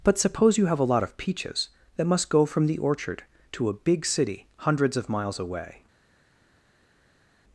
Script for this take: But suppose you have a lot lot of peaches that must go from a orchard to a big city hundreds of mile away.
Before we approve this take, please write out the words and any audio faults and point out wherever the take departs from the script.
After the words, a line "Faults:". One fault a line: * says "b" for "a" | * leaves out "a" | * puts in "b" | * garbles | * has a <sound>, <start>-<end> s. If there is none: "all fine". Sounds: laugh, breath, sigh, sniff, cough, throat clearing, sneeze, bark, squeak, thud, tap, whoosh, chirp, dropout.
But suppose you have a lot of peaches that must go from the orchard to a big city hundreds of miles away.
Faults:
* leaves out "lot"
* says "the" for "a"
* says "miles" for "mile"